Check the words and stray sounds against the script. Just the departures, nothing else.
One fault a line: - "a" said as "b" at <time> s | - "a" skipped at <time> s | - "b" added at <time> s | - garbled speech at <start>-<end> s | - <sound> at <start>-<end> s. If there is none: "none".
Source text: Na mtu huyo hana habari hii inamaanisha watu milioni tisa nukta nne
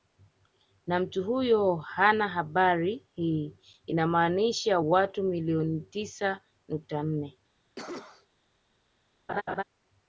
- cough at 7.8-8.3 s
- laugh at 9.3-9.6 s